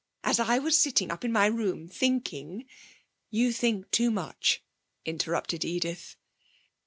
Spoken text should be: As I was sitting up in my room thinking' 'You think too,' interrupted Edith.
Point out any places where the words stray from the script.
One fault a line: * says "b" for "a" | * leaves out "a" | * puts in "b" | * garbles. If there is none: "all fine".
* puts in "much"